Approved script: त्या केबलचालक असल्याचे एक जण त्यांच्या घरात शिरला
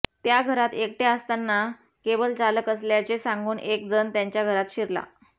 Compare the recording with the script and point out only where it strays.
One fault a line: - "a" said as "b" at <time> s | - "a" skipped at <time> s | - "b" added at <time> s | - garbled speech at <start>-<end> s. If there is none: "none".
- "घरात एकटय़ा असताना" added at 0.4 s
- "सांगून" added at 3.2 s